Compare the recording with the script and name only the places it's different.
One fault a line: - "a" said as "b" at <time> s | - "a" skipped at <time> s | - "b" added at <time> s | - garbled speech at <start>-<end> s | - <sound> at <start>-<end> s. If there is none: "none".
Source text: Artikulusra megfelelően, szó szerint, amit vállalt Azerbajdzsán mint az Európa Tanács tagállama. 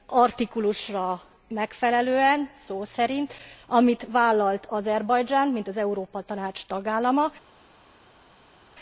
none